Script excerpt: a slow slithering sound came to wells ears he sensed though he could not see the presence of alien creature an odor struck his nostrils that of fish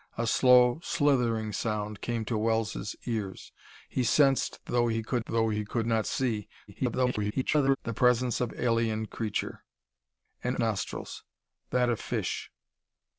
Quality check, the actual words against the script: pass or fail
fail